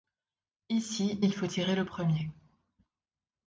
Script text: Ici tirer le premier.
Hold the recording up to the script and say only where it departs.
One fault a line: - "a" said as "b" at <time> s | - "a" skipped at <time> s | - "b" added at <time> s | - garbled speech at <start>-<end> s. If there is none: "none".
- "il faut" added at 1.2 s